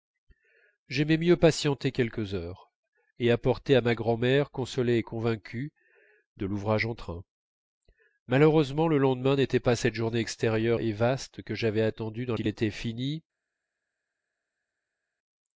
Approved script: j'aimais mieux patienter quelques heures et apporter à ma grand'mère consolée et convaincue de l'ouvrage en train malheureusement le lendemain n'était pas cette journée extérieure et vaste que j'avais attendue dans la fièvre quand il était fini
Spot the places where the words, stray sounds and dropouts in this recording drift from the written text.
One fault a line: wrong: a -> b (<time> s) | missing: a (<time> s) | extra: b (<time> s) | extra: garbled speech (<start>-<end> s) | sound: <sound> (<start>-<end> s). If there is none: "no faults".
missing: la fièvre quand (12.3 s)